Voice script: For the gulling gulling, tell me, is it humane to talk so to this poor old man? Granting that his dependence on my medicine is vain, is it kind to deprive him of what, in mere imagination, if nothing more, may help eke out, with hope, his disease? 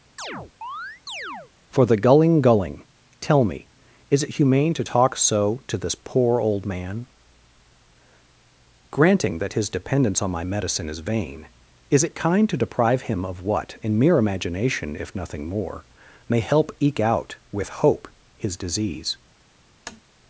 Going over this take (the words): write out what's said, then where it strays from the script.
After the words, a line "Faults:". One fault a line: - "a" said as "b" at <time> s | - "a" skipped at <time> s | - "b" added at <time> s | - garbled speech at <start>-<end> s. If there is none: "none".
For the gulling gulling, tell me, is it humane to talk so to this poor old man? Granting that his dependence on my medicine is vain, is it kind to deprive him of what, in mere imagination, if nothing more, may help eke out, with hope, his disease?
Faults:
none